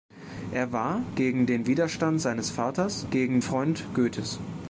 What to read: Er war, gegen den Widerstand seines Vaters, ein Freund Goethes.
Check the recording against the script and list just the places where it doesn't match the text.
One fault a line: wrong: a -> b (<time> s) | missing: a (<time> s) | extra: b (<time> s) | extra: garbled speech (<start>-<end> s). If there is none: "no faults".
wrong: ein -> gegen (3.1 s)